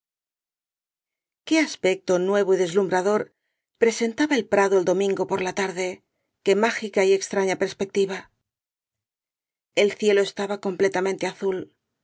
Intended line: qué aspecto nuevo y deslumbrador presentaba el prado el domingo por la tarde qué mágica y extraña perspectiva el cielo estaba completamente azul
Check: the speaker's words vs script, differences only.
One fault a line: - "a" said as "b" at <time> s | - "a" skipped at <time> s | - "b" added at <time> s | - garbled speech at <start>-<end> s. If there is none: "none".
none